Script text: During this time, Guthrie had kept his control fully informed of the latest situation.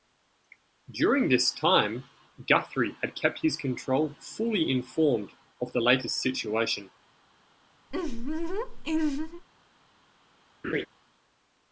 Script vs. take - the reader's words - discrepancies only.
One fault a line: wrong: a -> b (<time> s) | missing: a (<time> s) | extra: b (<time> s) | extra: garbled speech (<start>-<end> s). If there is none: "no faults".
no faults